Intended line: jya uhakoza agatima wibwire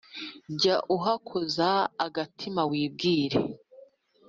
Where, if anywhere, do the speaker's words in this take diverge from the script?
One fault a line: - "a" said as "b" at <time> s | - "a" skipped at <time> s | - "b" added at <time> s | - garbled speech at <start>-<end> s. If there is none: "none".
none